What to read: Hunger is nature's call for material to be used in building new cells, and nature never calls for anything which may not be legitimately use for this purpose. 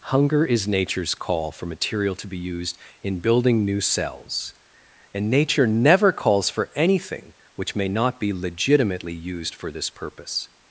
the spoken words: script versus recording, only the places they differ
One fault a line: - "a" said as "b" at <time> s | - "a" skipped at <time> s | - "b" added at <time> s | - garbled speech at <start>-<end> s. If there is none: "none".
- "use" said as "used" at 9.1 s